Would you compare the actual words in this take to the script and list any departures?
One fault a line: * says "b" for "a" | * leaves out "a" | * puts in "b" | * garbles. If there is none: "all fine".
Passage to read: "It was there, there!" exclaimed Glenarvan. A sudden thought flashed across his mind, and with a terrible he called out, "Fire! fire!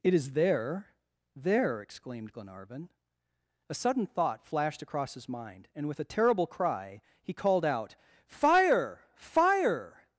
* says "is" for "was"
* puts in "cry"